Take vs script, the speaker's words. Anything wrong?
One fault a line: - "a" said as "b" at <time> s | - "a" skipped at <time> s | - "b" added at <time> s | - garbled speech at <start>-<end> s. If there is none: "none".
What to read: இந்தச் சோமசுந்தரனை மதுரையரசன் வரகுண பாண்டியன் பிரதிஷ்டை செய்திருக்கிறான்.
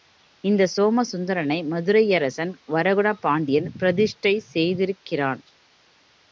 none